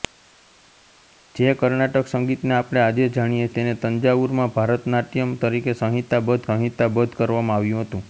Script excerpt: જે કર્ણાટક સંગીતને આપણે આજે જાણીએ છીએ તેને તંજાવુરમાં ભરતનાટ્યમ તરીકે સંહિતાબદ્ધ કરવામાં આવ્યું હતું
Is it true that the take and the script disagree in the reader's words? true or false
true